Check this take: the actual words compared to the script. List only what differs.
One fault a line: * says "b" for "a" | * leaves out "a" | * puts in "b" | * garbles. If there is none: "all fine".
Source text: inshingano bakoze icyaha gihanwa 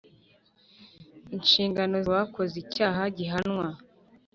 all fine